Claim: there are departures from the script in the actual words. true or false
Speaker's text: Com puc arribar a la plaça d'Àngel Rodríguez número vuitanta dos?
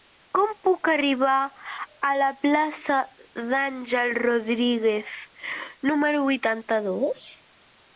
false